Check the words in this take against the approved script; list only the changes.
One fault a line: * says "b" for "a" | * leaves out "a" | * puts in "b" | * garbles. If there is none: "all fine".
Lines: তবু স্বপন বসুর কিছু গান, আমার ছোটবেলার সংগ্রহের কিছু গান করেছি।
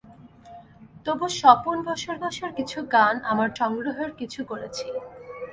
* puts in "বসুর"
* leaves out "ছোটবেলার"
* leaves out "গান"